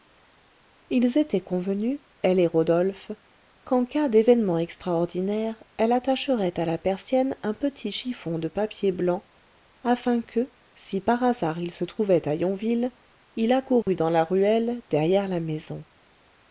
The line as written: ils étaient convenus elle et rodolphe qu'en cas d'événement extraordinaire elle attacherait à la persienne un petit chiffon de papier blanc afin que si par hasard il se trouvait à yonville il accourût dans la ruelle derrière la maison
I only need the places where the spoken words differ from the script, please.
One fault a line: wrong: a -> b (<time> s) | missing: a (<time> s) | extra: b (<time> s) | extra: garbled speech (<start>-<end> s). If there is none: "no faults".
no faults